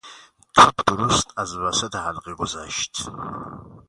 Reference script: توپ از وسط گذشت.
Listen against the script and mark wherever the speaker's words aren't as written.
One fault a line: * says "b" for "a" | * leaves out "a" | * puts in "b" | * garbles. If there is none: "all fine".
* puts in "درست"
* puts in "حلقه"